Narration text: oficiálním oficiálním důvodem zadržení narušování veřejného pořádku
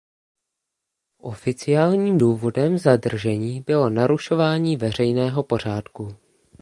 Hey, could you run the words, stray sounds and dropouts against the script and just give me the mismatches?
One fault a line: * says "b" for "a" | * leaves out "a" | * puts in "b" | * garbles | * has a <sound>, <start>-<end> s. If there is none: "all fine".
* leaves out "oficiálním"
* puts in "bylo"